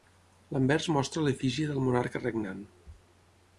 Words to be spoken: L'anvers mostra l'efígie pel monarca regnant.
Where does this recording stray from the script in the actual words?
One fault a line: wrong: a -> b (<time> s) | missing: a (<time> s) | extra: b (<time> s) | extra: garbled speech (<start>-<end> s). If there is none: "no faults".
wrong: pel -> del (1.7 s)